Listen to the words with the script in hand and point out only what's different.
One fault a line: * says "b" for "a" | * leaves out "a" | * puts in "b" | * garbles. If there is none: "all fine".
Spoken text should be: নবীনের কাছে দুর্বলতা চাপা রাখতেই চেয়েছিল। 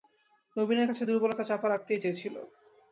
all fine